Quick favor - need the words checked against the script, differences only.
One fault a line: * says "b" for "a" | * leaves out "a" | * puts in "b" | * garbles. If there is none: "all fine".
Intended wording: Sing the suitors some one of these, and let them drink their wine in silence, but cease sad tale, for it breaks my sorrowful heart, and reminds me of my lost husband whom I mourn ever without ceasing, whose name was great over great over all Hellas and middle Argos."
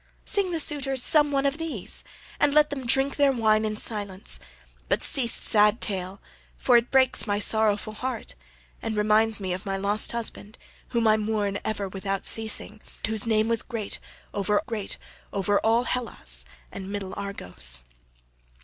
all fine